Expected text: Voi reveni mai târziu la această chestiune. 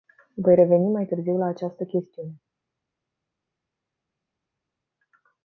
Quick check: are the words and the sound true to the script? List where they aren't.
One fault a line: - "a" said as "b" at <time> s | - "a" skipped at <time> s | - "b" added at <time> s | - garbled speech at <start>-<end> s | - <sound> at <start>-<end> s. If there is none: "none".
none